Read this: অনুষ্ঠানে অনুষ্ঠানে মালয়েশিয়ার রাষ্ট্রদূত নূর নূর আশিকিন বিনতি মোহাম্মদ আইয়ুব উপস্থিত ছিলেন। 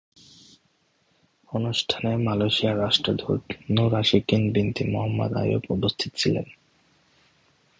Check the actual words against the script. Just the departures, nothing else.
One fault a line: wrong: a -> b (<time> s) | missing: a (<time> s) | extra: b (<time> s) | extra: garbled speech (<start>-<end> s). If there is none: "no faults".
missing: অনুষ্ঠানে (2.1 s)
missing: নূর (3.9 s)